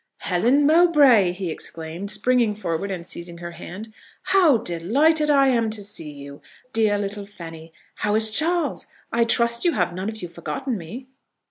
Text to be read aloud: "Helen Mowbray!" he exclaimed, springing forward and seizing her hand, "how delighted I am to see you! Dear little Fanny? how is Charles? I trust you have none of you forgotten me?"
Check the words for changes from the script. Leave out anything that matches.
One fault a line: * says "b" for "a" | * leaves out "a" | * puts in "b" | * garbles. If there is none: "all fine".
all fine